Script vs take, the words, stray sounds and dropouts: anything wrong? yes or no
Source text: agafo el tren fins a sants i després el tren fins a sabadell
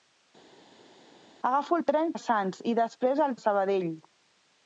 yes